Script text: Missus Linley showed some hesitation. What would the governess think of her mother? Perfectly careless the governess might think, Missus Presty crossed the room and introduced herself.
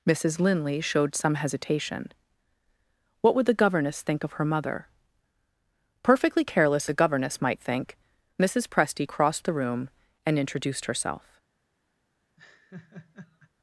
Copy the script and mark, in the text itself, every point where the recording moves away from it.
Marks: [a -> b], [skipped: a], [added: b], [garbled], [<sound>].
Missus Linley showed some hesitation. What would the governess think of her mother? Perfectly careless the governess might think, Missus Presty crossed the room and introduced herself. [laugh]